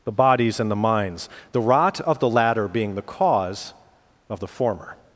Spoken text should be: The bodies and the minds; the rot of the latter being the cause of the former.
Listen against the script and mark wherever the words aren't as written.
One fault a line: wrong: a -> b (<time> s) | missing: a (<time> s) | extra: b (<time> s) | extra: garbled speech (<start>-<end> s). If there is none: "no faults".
no faults